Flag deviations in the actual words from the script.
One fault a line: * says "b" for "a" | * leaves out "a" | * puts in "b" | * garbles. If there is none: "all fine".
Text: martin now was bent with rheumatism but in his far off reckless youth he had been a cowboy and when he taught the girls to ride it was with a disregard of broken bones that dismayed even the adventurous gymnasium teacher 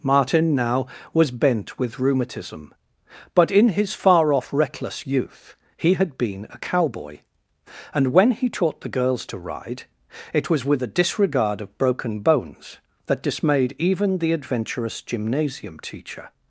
all fine